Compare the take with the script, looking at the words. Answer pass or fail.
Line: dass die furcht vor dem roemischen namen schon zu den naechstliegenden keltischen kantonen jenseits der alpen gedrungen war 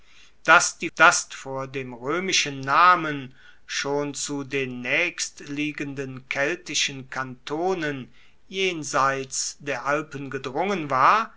fail